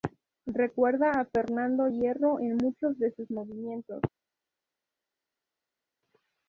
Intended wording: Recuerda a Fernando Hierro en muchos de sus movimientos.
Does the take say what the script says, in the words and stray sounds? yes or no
yes